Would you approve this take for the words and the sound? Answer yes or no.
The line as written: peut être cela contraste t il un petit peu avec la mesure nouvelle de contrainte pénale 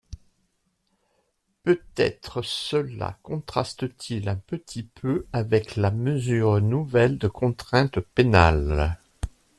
yes